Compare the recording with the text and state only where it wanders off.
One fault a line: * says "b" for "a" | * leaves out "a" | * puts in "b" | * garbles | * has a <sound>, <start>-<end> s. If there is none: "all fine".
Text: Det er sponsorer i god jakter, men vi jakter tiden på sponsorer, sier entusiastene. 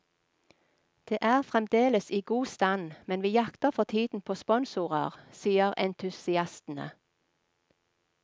* says "fremdeles" for "sponsorer"
* says "stand" for "jakter"
* puts in "for"